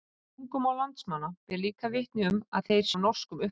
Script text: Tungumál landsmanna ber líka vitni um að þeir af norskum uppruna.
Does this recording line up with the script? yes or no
yes